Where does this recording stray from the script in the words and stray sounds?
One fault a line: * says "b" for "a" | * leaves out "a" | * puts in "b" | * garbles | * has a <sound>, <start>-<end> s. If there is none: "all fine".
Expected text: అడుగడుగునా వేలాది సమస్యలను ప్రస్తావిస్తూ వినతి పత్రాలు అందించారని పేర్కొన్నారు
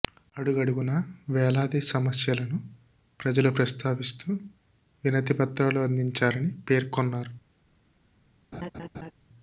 * puts in "ప్రజలు"
* has a laugh, 8.5-9.1 s